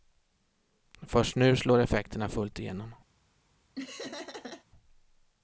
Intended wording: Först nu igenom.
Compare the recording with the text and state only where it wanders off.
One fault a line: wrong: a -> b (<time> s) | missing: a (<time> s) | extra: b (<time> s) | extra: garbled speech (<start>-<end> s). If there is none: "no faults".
extra: slår effekterna fullt (1.6 s)